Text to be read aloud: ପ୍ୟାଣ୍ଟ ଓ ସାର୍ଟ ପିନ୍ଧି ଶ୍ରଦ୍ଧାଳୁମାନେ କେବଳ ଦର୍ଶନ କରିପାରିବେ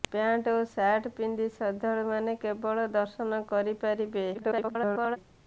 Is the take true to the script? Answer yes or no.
no